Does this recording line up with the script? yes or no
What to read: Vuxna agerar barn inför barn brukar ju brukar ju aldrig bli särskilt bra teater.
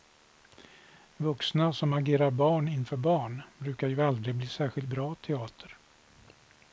no